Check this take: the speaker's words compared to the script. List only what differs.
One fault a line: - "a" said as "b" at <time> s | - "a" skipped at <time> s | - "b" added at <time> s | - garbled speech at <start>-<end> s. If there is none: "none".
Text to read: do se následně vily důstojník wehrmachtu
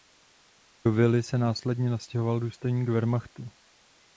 - "vily" added at 0.9 s
- "vily" said as "nastěhoval" at 1.9 s